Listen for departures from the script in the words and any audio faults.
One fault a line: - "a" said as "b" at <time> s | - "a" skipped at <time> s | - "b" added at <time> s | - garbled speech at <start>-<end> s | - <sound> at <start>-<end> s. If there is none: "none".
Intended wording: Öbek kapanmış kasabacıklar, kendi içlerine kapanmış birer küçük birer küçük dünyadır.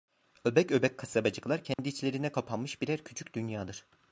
- "kapanmış" said as "öbek" at 0.7 s
- dropout at 1.7-1.8 s
- "birer küçük" skipped at 3.3 s